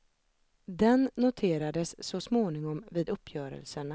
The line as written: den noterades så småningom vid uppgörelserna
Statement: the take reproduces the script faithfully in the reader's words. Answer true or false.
true